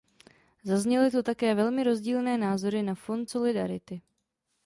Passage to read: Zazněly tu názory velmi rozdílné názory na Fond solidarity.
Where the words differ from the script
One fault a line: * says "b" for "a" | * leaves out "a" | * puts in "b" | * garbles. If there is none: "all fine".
* says "také" for "názory"